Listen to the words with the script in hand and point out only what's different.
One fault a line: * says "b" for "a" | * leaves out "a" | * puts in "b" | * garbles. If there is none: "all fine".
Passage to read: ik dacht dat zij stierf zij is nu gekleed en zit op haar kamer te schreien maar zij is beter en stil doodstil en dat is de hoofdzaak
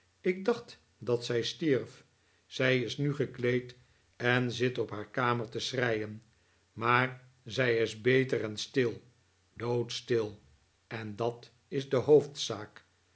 all fine